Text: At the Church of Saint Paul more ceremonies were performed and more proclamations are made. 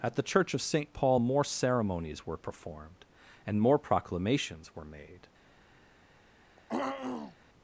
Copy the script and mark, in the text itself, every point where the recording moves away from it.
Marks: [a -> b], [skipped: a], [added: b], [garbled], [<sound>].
At the Church of Saint Paul more ceremonies were performed and more proclamations [are -> were] made. [throat clearing]